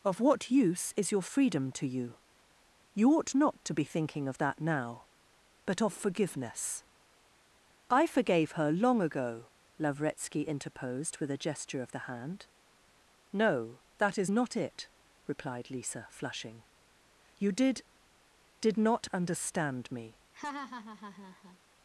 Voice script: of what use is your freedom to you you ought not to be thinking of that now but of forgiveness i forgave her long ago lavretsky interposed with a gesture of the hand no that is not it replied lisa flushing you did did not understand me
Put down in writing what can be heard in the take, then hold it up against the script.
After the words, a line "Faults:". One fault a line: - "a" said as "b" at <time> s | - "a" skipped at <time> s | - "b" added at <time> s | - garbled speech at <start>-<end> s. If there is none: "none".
of what use is your freedom to you you ought not to be thinking of that now but of forgiveness i forgave her long ago lavretsky interposed with a gesture of the hand no that is not it replied lisa flushing you did did not understand me
Faults:
none